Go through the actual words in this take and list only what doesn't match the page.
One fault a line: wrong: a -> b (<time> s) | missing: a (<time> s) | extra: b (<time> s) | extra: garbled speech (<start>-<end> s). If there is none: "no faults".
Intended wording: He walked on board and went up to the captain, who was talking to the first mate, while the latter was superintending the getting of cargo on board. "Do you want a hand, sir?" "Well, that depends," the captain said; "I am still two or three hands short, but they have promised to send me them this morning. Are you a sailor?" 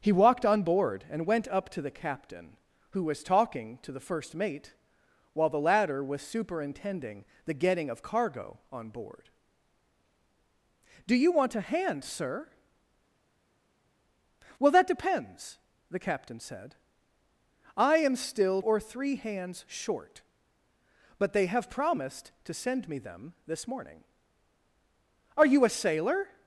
missing: two (18.6 s)